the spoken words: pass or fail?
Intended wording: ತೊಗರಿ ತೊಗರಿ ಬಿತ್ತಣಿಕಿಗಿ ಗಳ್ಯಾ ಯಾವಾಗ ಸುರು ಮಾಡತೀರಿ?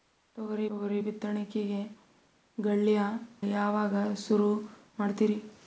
pass